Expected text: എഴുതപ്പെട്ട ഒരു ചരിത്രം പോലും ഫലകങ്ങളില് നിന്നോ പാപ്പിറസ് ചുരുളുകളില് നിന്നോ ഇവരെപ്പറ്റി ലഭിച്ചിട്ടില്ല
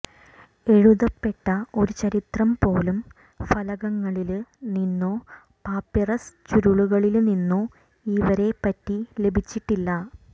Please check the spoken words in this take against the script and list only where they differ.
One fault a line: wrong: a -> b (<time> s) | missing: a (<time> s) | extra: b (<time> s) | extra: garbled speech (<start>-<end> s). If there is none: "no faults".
no faults